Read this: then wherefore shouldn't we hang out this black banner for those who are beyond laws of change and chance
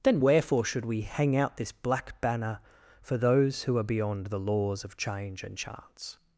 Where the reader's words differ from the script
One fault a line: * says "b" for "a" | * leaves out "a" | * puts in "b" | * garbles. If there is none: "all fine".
* says "should" for "shouldn't"
* puts in "the"